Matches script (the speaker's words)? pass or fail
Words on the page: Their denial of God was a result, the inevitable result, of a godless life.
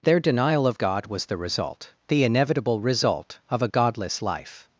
fail